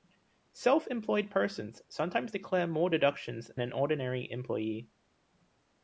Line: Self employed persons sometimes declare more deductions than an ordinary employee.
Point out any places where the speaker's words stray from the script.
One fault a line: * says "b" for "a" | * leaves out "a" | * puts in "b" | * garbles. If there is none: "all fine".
* leaves out "than"